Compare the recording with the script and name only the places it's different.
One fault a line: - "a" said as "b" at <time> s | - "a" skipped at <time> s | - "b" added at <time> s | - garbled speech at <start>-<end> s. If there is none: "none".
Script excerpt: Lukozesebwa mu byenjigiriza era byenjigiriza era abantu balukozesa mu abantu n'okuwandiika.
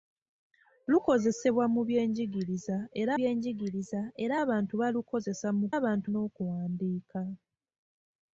none